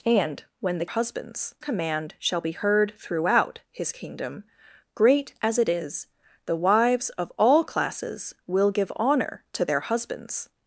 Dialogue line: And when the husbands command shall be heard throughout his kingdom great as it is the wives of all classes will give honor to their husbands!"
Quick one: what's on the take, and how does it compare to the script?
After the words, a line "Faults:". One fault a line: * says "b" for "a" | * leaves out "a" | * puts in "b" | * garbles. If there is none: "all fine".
And when the husbands command shall be heard throughout his kingdom great as it is the wives of all classes will give honor to their husbands!"
Faults:
all fine